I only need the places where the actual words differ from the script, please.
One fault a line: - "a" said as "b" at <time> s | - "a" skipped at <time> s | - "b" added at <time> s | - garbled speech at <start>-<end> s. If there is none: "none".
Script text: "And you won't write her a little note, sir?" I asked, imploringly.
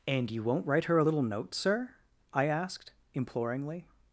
none